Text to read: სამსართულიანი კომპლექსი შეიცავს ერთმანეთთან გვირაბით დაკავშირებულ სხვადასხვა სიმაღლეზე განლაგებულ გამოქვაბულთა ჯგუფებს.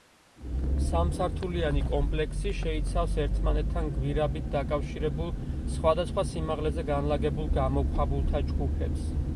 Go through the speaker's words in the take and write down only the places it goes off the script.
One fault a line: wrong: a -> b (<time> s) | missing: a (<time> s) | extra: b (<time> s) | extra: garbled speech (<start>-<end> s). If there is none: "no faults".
no faults